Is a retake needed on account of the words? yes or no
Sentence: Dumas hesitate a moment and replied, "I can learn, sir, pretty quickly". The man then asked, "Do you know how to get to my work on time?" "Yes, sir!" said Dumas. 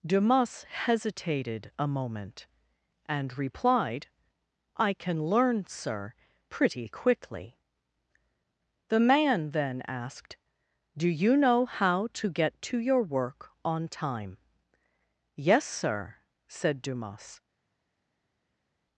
yes